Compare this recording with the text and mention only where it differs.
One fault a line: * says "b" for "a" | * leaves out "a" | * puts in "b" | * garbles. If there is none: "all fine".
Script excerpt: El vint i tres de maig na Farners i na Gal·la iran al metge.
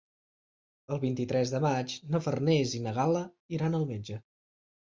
all fine